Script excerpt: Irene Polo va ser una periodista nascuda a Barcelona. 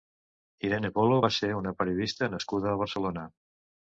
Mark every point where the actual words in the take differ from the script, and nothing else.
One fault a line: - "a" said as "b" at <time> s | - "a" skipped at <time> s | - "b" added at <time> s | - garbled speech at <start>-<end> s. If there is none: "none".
none